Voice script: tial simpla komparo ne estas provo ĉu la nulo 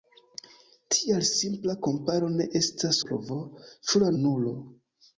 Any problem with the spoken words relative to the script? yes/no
no